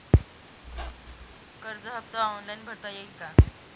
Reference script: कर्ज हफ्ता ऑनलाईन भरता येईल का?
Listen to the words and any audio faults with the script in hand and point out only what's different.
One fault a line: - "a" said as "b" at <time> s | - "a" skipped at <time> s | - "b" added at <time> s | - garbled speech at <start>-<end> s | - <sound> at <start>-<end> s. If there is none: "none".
- squeak at 0.6-1.3 s